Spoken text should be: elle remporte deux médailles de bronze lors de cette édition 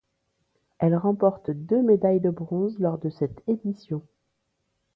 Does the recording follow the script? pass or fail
pass